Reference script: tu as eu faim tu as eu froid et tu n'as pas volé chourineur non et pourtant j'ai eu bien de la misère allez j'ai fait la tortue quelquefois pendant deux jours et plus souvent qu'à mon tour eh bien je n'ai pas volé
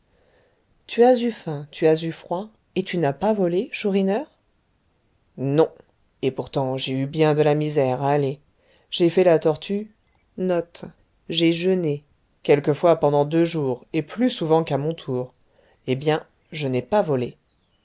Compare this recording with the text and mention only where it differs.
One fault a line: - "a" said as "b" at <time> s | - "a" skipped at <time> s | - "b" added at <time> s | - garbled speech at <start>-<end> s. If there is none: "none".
none